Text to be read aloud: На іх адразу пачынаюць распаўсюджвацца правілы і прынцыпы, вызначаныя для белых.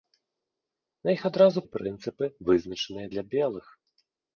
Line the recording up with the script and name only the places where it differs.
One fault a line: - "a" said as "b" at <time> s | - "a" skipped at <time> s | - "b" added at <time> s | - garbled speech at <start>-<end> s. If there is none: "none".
- "пачынаюць распаўсюджвацца правілы" skipped at 1.6 s